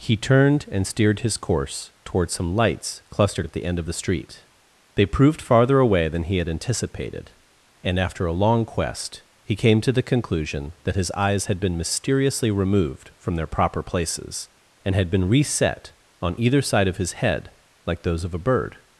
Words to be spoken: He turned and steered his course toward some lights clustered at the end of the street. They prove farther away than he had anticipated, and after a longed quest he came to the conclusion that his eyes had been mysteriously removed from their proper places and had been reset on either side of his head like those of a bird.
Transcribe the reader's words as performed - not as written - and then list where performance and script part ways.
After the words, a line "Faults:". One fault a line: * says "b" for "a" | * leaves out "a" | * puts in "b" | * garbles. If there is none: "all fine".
He turned and steered his course toward some lights clustered at the end of the street. They proved farther away than he had anticipated, and after a long quest he came to the conclusion that his eyes had been mysteriously removed from their proper places and had been reset on either side of his head like those of a bird.
Faults:
* says "proved" for "prove"
* says "long" for "longed"